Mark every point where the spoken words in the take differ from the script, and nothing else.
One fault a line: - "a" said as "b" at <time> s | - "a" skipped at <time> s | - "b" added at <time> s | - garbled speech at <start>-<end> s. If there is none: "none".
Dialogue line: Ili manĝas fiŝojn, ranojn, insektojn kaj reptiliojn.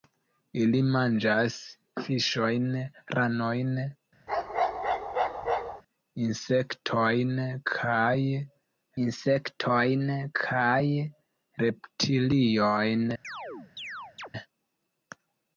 - "insektojn kaj" added at 9.0 s